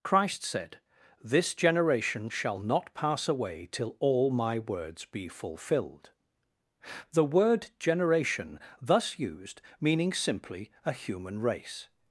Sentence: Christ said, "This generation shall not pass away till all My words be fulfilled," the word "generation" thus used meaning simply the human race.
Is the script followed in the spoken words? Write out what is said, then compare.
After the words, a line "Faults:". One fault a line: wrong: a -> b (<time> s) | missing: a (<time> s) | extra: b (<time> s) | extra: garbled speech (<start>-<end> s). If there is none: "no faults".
Christ said, "This generation shall not pass away till all My words be fulfilled," the word "generation" thus used meaning simply a human race.
Faults:
wrong: the -> a (10.8 s)